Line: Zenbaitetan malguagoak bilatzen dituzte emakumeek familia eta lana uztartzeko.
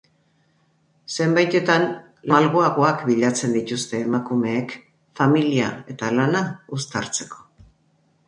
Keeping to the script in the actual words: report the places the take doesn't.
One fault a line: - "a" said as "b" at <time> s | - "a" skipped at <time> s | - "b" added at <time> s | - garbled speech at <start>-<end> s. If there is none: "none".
none